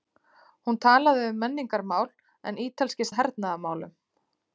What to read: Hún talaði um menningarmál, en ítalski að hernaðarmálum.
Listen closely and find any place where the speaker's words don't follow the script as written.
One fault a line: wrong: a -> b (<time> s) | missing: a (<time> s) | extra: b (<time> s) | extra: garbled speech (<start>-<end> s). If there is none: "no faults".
no faults